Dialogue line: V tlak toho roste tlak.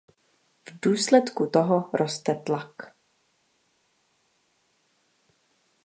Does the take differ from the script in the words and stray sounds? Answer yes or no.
yes